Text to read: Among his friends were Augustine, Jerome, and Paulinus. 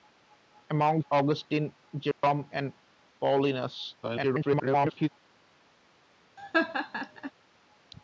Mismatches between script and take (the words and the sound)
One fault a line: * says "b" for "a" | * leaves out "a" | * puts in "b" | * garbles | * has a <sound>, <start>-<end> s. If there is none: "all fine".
* leaves out "his friends were"
* has a dropout, 2.1-2.2 s
* garbles
* has a laugh, 6.4-7.3 s